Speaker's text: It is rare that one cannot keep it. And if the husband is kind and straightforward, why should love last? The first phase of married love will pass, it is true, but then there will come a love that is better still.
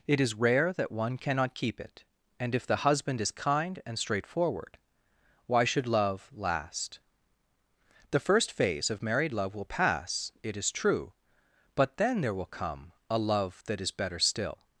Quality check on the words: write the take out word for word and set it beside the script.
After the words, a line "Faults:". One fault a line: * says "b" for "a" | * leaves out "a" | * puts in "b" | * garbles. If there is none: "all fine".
It is rare that one cannot keep it. And if the husband is kind and straightforward, why should love last? The first phase of married love will pass, it is true, but then there will come a love that is better still.
Faults:
all fine